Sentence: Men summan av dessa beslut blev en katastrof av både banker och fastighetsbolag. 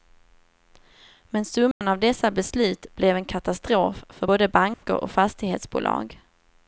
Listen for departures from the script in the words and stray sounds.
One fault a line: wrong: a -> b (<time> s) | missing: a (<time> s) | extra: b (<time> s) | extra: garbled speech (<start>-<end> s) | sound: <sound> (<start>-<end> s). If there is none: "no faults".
sound: dropout (1.7-1.8 s)
wrong: av -> för (4.1 s)
sound: dropout (4.7-4.8 s)